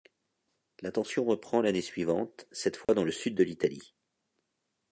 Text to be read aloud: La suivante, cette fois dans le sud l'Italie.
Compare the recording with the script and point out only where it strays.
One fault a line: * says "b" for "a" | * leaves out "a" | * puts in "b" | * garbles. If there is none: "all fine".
* puts in "tension reprend l'année"
* puts in "de"